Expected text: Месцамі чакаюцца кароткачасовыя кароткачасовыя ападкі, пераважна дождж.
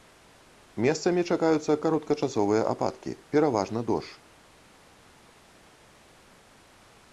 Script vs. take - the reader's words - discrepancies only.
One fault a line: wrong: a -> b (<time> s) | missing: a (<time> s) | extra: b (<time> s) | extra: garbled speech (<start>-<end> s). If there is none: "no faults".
missing: кароткачасовыя (2.6 s)